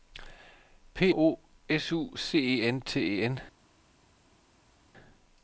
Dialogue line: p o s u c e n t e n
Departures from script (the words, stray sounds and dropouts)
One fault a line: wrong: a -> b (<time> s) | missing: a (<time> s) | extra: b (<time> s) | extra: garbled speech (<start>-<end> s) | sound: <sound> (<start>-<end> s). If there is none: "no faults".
no faults